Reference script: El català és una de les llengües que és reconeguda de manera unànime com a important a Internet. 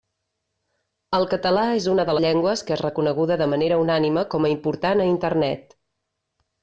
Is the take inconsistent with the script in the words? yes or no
yes